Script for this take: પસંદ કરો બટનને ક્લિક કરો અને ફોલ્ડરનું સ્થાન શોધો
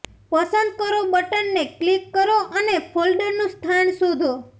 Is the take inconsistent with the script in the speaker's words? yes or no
no